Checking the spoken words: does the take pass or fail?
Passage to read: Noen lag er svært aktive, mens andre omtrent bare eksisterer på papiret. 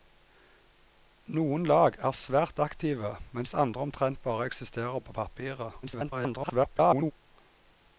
fail